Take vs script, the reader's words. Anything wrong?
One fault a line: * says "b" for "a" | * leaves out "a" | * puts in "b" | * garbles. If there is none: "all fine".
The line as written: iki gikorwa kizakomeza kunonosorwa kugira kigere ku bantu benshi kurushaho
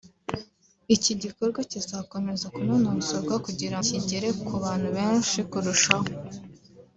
all fine